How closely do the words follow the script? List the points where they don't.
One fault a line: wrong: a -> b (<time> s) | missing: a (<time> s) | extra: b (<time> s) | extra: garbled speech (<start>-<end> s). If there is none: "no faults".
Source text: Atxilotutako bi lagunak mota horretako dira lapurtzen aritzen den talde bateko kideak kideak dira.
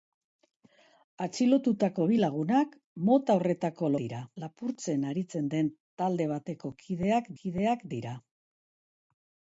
no faults